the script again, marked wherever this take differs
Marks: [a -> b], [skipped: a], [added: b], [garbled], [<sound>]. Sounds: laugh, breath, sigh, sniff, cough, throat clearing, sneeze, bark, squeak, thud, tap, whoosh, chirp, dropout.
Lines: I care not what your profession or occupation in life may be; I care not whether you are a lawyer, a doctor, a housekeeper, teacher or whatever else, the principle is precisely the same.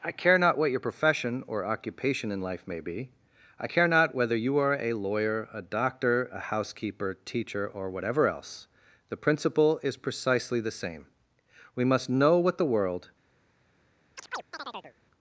I care not what your profession or occupation in life may be; I care not whether you are a lawyer, a doctor, a housekeeper, teacher or whatever else, the principle is precisely the same. [added: We must know what the world] [chirp]